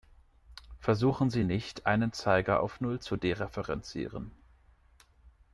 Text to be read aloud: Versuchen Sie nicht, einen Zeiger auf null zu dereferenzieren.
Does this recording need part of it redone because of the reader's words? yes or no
no